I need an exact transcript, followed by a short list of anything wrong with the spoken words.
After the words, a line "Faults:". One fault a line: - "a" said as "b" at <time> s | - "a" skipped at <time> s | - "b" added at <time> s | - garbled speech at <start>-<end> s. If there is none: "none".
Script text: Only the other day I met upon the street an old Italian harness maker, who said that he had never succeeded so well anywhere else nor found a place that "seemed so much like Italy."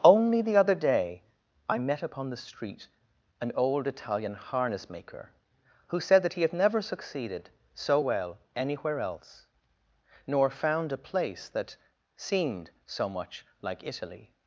Only the other day I met upon the street an old Italian harness maker, who said that he had never succeeded so well anywhere else nor found a place that "seemed so much like Italy."
Faults:
none